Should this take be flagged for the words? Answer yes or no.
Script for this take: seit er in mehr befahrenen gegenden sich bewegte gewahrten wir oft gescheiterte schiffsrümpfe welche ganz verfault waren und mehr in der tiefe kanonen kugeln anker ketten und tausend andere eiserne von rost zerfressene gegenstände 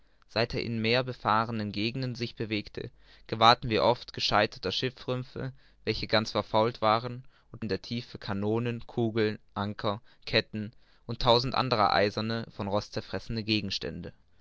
yes